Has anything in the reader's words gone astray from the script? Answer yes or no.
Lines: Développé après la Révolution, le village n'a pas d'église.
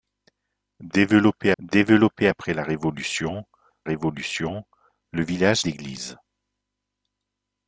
yes